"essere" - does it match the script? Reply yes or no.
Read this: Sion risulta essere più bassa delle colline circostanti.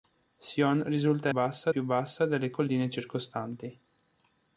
no